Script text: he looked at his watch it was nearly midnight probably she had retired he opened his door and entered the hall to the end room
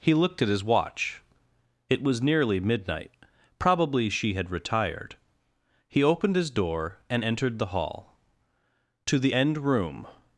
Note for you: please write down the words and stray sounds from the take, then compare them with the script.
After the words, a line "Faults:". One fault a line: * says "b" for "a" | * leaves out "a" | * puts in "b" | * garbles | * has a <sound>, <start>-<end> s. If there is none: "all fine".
he looked at his watch it was nearly midnight probably she had retired he opened his door and entered the hall to the end room
Faults:
all fine